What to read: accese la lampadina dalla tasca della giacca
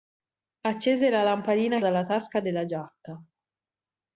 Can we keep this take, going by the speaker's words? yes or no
yes